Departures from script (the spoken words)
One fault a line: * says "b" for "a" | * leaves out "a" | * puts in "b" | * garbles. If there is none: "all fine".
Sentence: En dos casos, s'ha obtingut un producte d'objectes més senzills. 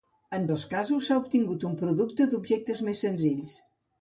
all fine